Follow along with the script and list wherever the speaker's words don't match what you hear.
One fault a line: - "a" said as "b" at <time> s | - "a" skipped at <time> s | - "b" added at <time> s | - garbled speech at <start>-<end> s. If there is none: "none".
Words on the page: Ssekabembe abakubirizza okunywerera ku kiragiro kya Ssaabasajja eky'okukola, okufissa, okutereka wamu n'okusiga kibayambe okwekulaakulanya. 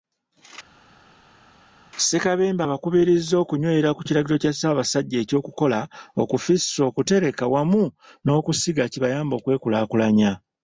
none